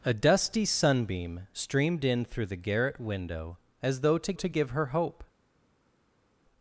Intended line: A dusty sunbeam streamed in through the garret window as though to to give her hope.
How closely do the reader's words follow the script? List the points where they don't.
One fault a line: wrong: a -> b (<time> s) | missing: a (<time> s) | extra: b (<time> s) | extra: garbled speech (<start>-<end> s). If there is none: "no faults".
no faults